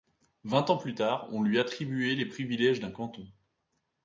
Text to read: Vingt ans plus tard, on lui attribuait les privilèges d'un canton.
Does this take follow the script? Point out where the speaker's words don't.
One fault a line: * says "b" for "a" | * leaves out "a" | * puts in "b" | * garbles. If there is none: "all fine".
all fine